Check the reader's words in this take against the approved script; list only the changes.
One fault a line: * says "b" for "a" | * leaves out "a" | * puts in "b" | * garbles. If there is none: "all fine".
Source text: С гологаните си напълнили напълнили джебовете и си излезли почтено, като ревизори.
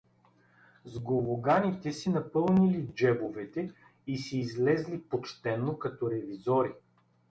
* leaves out "напълнили"